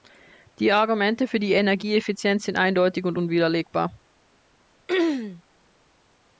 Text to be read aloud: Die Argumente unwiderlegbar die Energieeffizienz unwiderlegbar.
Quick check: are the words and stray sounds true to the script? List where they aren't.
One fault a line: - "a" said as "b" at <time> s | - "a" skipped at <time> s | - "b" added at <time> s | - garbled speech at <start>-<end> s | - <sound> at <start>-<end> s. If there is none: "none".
- "unwiderlegbar" said as "für" at 1.3 s
- "sind eindeutig und" added at 2.5 s
- throat clearing at 4.9-5.4 s